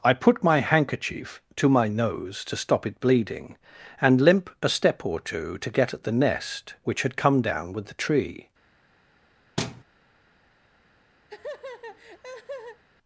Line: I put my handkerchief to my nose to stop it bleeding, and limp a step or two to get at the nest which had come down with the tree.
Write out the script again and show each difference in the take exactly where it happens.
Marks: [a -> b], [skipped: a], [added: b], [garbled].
I put my handkerchief to my nose to stop it bleeding, and limp a step or two to get at the nest which had come down with the tree.